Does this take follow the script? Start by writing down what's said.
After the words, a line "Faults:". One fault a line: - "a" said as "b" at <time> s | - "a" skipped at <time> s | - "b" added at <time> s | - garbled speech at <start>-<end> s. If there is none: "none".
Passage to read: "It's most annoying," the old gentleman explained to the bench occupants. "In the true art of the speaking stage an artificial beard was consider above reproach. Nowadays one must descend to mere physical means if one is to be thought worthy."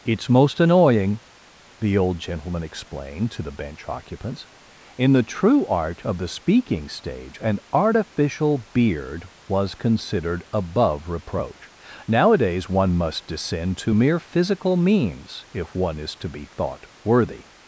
"It's most annoying," the old gentleman explained to the bench occupants. "In the true art of the speaking stage an artificial beard was considered above reproach. Nowadays one must descend to mere physical means if one is to be thought worthy."
Faults:
- "consider" said as "considered" at 9.8 s